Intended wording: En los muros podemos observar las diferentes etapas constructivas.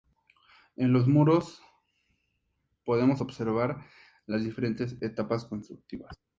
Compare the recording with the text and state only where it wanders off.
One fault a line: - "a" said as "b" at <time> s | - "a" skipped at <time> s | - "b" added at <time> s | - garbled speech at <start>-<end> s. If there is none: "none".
none